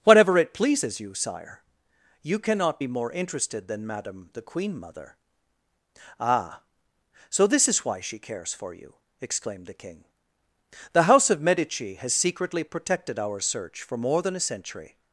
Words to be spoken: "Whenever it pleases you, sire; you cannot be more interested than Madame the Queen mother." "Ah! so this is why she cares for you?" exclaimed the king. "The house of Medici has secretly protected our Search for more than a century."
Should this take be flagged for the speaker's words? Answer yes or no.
yes